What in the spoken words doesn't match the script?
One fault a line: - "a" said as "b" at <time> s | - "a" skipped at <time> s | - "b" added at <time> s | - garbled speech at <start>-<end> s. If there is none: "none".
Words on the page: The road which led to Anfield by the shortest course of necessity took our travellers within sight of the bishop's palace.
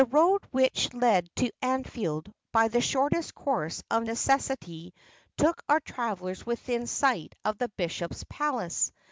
none